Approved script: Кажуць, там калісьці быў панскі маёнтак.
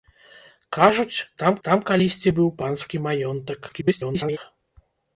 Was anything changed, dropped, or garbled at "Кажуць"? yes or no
no